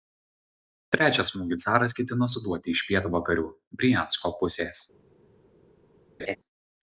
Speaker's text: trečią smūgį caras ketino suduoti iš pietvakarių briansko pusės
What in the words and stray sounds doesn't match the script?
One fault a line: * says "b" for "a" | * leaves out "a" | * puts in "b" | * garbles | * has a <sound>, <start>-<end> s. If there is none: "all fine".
* has a laugh, 6.2-6.4 s